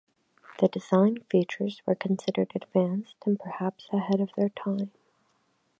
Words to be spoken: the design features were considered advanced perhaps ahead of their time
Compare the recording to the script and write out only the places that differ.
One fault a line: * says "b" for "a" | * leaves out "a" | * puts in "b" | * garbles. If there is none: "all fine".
* puts in "and"